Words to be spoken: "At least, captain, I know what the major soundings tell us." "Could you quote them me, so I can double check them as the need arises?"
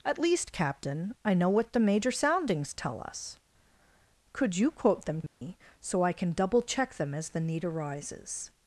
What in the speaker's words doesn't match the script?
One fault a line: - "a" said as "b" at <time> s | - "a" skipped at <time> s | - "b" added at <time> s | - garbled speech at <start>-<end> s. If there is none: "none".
none